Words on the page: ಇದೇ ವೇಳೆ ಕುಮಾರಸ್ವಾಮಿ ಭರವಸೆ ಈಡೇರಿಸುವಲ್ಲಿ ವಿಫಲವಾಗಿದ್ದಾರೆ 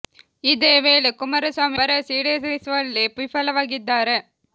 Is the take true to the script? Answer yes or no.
yes